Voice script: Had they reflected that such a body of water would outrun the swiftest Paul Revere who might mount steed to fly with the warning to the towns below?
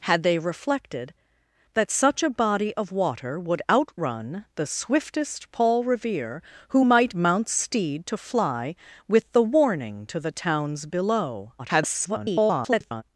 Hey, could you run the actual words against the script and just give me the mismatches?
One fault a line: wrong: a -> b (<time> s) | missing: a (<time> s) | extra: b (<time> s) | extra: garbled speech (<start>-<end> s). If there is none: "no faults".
extra: garbled speech (11.6-13.0 s)